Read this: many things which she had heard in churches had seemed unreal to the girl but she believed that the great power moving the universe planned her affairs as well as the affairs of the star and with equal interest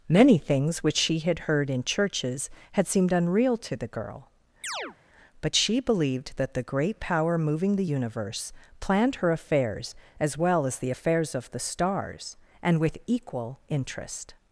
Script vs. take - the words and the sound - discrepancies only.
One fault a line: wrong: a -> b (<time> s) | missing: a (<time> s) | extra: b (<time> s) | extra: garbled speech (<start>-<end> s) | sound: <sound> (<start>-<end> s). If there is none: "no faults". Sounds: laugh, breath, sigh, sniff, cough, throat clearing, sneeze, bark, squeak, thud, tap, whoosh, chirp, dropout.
sound: chirp (4.6-5.0 s)
wrong: star -> stars (11.6 s)